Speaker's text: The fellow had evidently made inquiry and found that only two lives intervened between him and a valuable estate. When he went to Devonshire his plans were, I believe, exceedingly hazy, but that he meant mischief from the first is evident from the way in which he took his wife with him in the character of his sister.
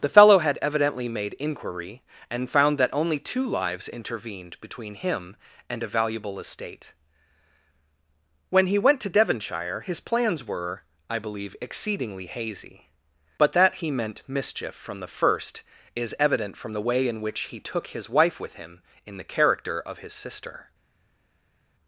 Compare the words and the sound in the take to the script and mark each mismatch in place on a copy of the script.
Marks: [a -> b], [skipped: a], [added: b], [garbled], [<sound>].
The fellow had evidently made inquiry and found that only two lives intervened between him and a valuable estate. When he went to Devonshire his plans were, I believe, exceedingly hazy, but that he meant mischief from the first is evident from the way in which he took his wife with him in the character of his sister.